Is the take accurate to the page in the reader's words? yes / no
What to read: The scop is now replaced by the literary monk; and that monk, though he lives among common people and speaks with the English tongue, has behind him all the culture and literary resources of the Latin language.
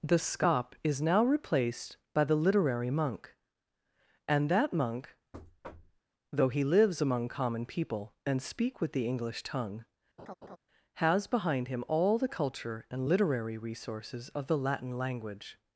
no